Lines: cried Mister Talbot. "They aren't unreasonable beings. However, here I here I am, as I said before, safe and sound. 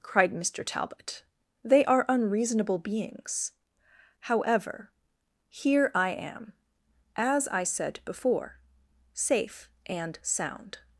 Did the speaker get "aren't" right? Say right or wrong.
wrong